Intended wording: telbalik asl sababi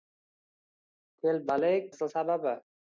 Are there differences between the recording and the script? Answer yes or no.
no